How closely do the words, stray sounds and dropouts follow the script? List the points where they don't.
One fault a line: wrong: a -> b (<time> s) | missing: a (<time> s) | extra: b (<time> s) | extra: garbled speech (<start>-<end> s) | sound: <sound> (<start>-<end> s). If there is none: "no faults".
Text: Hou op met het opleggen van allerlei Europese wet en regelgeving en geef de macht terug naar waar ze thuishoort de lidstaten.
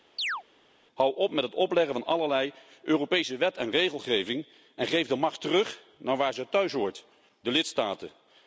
sound: chirp (0.2-0.4 s)